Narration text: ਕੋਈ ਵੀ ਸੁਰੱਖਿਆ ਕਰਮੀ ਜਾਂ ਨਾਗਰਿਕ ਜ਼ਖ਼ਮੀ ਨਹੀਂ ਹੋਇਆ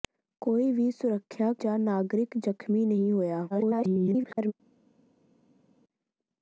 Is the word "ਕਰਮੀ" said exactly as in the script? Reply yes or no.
no